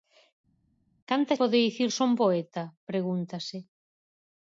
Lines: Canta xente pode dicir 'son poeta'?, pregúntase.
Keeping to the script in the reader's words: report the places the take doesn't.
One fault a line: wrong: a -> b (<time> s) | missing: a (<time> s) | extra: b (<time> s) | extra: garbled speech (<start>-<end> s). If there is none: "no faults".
missing: xente (1.3 s)